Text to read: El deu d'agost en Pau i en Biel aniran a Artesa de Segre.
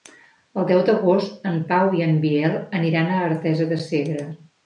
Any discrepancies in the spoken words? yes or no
no